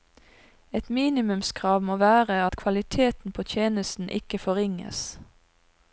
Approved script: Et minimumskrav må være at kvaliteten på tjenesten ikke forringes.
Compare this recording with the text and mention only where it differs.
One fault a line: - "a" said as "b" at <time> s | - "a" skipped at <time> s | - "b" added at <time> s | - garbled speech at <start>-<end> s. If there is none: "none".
none